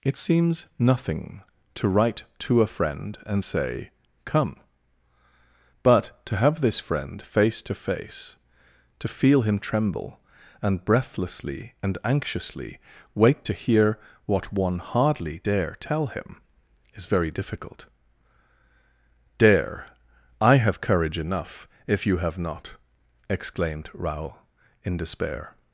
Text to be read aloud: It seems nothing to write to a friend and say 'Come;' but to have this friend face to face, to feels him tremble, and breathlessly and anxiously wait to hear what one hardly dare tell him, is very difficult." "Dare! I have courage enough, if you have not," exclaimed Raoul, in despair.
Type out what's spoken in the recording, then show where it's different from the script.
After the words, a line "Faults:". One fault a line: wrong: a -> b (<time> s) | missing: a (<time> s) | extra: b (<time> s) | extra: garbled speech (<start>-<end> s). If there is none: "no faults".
It seems nothing to write to a friend and say 'Come;' but to have this friend face to face, to feel him tremble, and breathlessly and anxiously wait to hear what one hardly dare tell him, is very difficult." "Dare! I have courage enough, if you have not," exclaimed Raoul, in despair.
Faults:
wrong: feels -> feel (9.1 s)